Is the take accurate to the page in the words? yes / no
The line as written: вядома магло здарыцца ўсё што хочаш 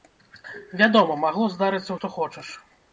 no